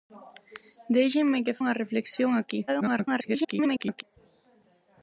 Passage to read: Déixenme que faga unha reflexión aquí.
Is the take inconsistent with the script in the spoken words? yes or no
yes